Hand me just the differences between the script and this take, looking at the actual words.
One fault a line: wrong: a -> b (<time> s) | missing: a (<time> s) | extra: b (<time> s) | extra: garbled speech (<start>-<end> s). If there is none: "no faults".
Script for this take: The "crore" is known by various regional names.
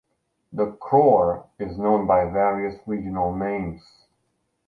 no faults